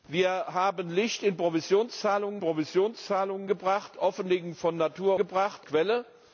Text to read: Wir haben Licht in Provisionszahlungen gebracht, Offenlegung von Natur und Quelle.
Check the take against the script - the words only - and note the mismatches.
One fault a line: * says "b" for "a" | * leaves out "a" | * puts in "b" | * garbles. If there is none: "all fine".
* puts in "Provisionszahlungen"
* says "gebracht" for "und"